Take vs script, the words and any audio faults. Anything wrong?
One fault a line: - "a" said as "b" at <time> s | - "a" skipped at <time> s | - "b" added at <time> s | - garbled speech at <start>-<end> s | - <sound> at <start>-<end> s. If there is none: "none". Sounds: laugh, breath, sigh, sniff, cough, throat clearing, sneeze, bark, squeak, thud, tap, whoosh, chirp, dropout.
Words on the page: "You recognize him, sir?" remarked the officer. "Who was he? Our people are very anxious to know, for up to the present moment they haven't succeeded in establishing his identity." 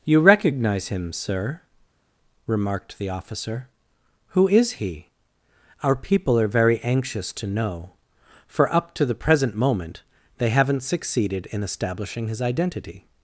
- "was" said as "is" at 4.5 s